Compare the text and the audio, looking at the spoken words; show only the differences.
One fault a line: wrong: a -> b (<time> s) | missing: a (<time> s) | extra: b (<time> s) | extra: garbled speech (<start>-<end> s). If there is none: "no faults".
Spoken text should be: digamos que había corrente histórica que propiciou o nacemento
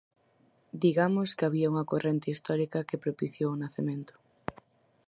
extra: unha (1.7 s)